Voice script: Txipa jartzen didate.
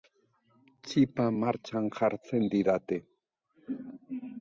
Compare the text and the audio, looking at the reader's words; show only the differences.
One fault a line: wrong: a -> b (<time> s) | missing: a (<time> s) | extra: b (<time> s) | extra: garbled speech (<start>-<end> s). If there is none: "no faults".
extra: martxan (1.4 s)